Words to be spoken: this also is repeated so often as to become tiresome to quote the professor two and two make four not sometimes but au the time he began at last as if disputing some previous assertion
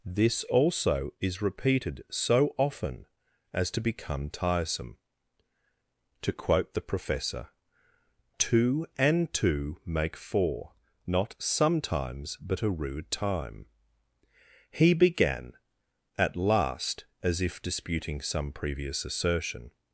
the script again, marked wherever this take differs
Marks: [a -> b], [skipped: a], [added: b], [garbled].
this also is repeated so often as to become tiresome to quote the professor two and two make four not sometimes but [au the -> a rude] time he began at last as if disputing some previous assertion